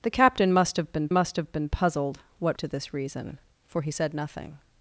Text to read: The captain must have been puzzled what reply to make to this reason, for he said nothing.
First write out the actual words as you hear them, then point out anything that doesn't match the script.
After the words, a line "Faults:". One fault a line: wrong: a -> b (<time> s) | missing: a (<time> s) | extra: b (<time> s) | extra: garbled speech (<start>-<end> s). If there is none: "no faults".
The captain must have been must have been puzzled what to this reason, for he said nothing.
Faults:
wrong: puzzled what reply to make -> must have been puzzled what (1.1 s)